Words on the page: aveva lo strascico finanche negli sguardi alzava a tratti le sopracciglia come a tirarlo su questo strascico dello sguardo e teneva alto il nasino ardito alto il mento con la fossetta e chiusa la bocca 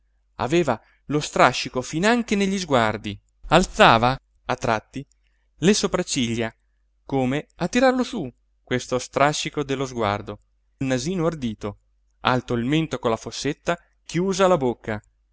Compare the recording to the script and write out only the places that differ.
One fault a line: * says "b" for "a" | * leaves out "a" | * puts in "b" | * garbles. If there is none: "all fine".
* leaves out "e teneva alto"
* leaves out "e"